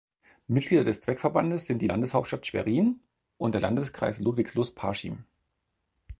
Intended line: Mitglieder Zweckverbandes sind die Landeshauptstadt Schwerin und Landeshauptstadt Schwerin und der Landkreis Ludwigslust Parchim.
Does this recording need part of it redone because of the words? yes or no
yes